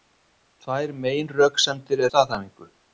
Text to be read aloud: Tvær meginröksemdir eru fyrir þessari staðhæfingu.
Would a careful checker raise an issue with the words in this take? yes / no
yes